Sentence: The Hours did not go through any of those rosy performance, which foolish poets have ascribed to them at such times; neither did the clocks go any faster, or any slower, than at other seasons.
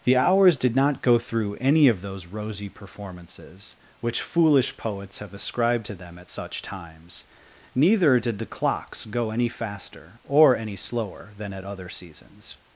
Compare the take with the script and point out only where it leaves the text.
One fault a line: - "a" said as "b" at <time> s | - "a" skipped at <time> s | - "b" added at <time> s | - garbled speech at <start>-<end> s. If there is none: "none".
- "performance" said as "performances" at 2.7 s